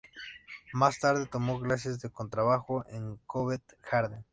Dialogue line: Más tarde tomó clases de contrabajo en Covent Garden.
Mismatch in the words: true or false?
false